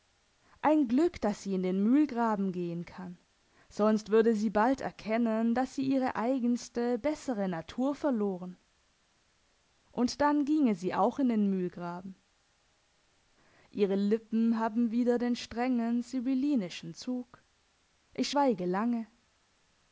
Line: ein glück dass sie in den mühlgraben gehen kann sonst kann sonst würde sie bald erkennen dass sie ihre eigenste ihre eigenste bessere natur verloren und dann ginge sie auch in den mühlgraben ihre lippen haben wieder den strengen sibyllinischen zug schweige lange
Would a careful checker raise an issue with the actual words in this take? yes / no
yes